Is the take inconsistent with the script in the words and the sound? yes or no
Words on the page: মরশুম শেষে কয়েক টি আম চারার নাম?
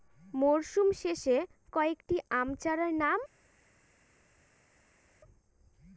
no